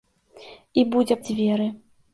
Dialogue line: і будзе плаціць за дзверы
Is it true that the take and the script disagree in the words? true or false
true